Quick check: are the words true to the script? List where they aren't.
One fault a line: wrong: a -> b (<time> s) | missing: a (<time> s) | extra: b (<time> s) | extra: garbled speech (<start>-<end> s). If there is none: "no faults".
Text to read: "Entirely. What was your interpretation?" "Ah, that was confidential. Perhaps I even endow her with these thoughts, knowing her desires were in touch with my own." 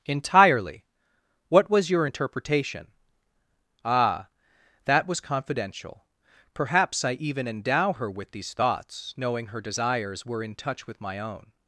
no faults